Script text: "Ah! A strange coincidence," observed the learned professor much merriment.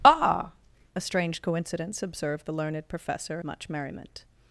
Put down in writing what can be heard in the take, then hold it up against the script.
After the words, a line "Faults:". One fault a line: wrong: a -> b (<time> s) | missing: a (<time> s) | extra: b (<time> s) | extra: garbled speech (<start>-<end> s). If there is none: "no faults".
"Ah! A strange coincidence," observed the learned professor much merriment.
Faults:
no faults